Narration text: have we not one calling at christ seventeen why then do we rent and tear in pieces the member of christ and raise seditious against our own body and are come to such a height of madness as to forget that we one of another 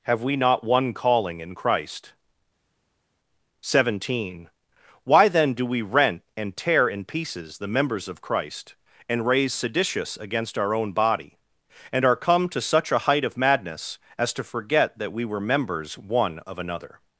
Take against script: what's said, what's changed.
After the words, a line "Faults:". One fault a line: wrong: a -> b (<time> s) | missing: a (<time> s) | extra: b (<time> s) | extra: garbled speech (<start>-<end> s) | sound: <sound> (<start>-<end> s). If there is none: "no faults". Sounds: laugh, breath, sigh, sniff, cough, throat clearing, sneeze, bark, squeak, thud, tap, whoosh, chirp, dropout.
have we not one calling in christ seventeen why then do we rent and tear in pieces the members of christ and raise seditious against our own body and are come to such a height of madness as to forget that we were members one of another
Faults:
wrong: at -> in (1.4 s)
wrong: member -> members (7.7 s)
extra: were members (15.2 s)